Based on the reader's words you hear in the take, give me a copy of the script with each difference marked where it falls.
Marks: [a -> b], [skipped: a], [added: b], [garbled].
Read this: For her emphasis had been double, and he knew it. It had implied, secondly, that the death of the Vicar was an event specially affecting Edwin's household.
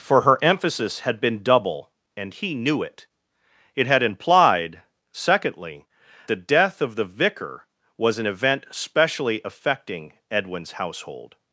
For her emphasis had been double, and he knew it. It had implied, secondly, [skipped: that] the death of the Vicar was an event specially affecting Edwin's household.